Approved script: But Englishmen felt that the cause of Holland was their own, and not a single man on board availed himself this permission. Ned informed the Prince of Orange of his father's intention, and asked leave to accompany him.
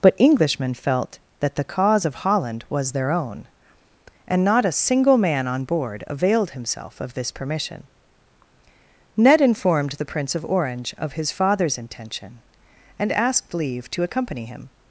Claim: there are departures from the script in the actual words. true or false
true